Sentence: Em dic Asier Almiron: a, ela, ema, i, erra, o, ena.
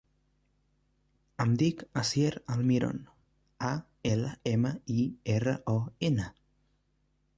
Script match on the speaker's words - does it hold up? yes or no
yes